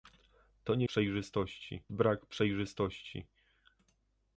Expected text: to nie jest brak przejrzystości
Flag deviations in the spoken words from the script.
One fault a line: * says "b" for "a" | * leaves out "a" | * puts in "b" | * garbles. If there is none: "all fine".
* says "przejrzystości" for "jest"